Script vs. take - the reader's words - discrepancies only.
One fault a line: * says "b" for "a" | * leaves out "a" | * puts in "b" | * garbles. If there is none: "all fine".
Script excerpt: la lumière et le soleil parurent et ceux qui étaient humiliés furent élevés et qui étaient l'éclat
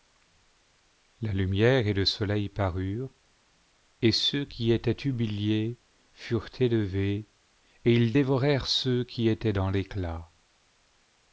* puts in "ils dévorèrent ceux"
* puts in "dans"